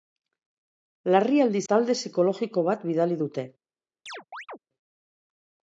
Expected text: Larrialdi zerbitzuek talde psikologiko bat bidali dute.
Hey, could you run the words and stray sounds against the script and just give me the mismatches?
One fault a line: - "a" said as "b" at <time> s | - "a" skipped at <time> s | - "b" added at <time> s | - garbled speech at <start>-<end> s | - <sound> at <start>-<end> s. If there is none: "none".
- "zerbitzuek" skipped at 1.6 s
- chirp at 4.1-4.6 s